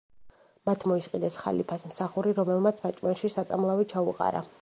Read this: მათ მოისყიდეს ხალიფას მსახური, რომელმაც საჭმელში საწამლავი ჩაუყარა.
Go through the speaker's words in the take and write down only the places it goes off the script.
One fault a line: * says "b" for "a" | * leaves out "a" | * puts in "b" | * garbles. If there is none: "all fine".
all fine